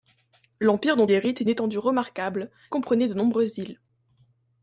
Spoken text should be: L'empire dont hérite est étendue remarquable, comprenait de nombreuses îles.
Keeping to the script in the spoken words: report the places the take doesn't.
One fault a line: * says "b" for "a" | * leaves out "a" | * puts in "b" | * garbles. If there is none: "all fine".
all fine